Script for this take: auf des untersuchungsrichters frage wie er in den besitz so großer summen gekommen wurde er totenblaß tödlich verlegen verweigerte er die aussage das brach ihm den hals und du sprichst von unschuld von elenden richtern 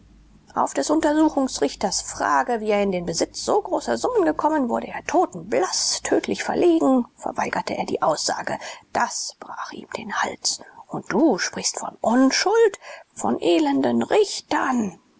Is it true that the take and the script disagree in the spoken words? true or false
false